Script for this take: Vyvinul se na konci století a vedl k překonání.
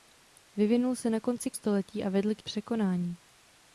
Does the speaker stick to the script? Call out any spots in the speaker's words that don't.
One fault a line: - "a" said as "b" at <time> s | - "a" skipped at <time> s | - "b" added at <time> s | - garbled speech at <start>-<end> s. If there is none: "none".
none